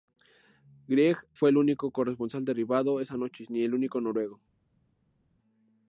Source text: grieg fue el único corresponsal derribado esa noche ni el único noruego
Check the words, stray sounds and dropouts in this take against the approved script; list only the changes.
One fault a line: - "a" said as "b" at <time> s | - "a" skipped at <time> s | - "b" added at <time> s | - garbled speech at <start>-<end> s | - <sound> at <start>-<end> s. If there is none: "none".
none